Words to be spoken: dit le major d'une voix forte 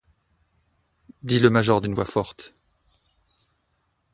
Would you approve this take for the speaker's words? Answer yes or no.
yes